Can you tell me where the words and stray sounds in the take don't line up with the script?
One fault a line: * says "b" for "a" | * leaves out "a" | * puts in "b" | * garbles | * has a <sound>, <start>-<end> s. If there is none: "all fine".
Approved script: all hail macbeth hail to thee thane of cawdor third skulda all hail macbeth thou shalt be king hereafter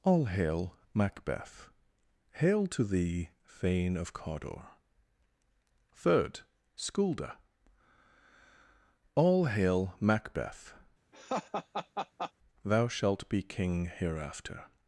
* has a laugh, 11.1-12.3 s